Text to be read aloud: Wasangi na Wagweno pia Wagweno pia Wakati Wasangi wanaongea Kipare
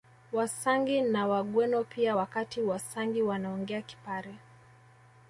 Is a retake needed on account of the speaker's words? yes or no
yes